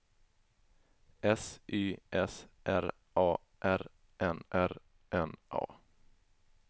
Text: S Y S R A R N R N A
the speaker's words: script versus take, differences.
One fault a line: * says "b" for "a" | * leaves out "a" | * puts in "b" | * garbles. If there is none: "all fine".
all fine